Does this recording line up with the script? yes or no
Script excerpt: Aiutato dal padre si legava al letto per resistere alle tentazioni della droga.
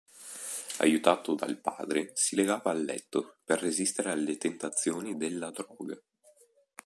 yes